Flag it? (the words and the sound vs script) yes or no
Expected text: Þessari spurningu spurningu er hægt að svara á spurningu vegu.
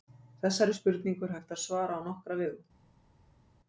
yes